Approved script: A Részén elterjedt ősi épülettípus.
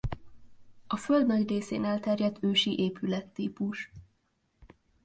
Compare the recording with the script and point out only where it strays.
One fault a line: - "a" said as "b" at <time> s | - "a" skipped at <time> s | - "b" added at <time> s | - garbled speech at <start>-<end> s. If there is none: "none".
- "Föld nagy" added at 1.0 s